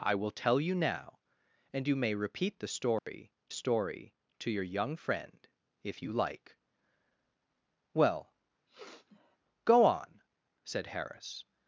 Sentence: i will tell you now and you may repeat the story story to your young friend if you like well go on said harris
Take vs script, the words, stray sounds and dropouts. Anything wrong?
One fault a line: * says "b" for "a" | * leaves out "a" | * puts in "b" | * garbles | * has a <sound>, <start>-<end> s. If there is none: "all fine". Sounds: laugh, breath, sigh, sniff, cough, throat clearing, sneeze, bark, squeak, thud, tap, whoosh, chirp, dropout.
* has a dropout, 3.0-3.1 s
* has a sniff, 8.7-9.4 s